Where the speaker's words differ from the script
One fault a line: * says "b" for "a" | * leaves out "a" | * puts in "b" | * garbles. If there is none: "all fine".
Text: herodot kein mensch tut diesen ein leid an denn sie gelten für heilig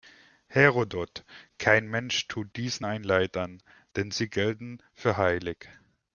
all fine